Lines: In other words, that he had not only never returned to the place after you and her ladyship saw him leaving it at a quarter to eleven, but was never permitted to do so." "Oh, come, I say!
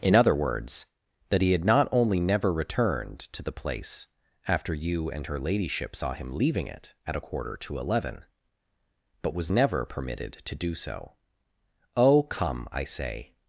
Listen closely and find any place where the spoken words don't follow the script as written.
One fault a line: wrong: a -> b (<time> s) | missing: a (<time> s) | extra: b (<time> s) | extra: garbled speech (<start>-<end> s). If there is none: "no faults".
no faults